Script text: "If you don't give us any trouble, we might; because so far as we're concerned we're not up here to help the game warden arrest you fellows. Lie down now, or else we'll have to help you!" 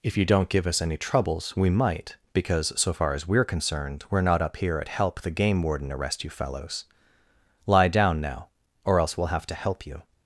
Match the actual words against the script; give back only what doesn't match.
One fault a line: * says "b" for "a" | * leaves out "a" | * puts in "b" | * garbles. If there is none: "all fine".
* says "troubles" for "trouble"
* says "at" for "to"